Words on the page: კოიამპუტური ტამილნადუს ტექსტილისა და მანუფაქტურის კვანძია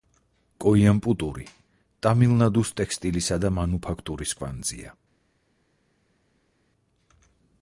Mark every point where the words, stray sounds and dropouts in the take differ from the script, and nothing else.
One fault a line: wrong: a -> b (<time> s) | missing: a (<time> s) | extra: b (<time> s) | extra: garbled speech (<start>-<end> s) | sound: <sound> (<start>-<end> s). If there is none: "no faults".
no faults